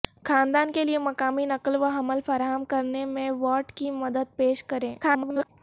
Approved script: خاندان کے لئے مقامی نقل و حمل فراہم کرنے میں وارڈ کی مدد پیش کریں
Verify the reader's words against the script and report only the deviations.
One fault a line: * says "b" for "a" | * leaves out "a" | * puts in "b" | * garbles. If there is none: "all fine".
* garbles